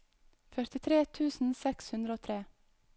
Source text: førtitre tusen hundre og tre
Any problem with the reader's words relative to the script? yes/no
yes